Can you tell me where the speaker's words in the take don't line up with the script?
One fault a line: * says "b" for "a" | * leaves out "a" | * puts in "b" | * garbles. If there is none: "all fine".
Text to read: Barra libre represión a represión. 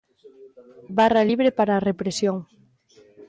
* says "para" for "represión"